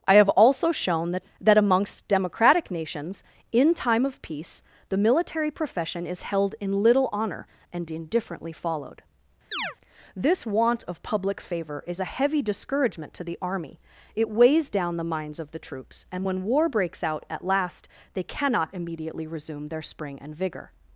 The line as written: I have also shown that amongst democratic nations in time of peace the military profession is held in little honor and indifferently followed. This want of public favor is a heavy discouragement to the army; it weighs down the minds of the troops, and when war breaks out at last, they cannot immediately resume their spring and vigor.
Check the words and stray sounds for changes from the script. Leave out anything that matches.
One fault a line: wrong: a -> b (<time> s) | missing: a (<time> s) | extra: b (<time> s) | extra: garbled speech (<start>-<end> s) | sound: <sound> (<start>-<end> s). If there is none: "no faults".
extra: that (1.4 s)
sound: chirp (9.5-9.8 s)